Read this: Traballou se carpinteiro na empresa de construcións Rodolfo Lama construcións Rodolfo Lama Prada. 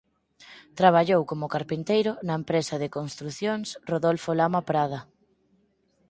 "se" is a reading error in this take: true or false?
true